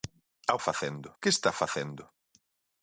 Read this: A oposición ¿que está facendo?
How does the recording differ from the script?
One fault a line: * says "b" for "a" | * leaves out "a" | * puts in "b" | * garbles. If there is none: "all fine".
* says "facendo" for "oposición"